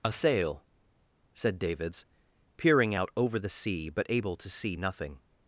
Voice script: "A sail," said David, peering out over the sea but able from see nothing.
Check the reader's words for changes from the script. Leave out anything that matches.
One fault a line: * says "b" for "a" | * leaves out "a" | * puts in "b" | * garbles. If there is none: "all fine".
* says "Davids" for "David"
* says "to" for "from"